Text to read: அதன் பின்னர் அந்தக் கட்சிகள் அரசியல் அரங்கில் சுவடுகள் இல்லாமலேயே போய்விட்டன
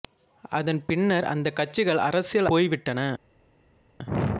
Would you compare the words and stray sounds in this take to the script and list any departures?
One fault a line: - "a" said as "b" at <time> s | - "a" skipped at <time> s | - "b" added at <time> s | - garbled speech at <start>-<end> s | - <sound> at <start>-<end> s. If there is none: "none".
- "அரங்கில் சுவடுகள் இல்லாமலேயே" skipped at 2.5 s